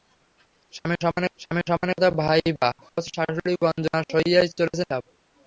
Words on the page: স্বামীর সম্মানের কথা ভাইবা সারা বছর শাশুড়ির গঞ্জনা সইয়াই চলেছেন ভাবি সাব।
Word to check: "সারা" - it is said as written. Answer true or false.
false